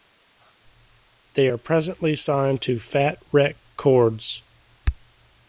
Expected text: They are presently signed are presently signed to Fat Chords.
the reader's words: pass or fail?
fail